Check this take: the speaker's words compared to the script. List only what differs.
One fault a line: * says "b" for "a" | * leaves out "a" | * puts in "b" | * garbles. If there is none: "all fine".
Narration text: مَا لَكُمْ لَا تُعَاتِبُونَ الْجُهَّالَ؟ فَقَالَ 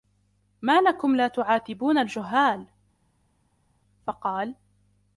all fine